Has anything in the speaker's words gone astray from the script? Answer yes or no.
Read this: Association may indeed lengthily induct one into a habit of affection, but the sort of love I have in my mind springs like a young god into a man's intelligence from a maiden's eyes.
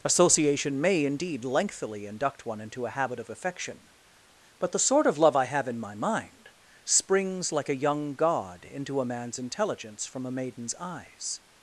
no